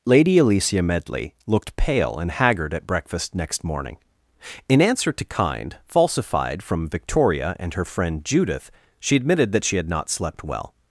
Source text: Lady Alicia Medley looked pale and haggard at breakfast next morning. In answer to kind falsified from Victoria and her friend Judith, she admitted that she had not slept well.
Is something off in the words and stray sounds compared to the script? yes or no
no